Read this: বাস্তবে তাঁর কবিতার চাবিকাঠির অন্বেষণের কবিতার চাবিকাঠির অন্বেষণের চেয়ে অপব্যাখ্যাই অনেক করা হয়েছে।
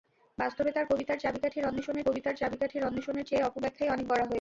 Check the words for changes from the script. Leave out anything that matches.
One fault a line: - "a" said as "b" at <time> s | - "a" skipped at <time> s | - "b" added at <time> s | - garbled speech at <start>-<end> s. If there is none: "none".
none